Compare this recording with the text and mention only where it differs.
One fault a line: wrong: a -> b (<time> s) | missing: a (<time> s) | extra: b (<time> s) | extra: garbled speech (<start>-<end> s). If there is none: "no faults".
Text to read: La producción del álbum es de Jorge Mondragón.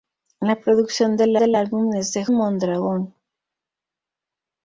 extra: del (1.4 s)
missing: Jorge (2.3 s)